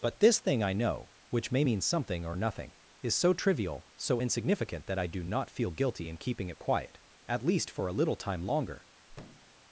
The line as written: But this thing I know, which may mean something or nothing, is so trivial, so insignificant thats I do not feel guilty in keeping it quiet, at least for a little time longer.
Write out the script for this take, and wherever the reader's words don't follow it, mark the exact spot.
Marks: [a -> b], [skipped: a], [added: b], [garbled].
But this thing I know, which may mean something or nothing, is so trivial, so insignificant [thats -> that] I do not feel guilty in keeping it quiet, at least for a little time longer.